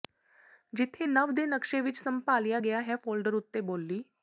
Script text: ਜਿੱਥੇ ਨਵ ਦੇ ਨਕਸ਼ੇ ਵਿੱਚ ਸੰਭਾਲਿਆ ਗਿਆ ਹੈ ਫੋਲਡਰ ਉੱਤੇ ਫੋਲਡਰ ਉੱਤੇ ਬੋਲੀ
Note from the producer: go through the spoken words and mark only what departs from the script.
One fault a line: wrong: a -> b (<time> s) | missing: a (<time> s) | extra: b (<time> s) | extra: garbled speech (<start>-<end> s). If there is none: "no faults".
missing: ਫੋਲਡਰ ਉੱਤੇ (3.6 s)